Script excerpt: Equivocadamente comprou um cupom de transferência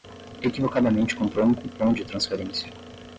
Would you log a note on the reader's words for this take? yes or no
no